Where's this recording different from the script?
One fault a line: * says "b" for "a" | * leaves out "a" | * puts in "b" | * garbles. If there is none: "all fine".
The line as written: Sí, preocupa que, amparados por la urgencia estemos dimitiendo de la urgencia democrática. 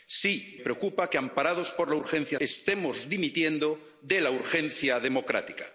all fine